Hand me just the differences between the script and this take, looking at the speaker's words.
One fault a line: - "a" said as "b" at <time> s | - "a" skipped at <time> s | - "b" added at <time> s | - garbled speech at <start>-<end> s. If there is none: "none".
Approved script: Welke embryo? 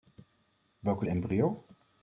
none